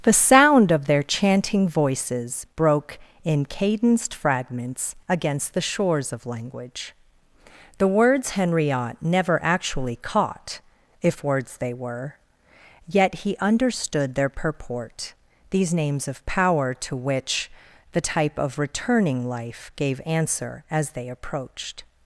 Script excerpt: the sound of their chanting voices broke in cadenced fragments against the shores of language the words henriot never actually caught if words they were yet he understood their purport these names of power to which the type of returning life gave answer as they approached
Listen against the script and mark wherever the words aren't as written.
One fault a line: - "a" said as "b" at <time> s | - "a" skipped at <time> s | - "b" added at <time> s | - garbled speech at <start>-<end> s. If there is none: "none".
none